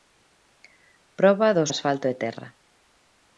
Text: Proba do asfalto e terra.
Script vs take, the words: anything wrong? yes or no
no